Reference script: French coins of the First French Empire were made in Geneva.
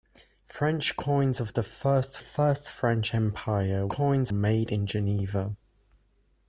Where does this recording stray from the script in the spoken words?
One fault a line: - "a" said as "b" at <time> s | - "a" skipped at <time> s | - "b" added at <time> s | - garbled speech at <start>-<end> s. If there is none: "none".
- "First" added at 2.2 s
- "were" said as "coins" at 3.9 s